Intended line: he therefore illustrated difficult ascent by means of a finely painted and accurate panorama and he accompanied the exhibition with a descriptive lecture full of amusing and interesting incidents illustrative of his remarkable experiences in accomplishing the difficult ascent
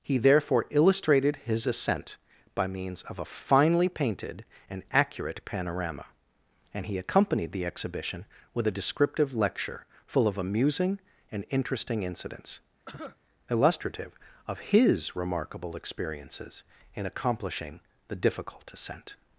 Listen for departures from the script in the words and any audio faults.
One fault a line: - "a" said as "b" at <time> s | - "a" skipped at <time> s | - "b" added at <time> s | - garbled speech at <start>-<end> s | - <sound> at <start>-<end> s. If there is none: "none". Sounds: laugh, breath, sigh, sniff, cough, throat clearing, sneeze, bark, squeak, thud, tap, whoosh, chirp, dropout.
- "difficult" said as "his" at 1.4 s
- cough at 12.9-13.2 s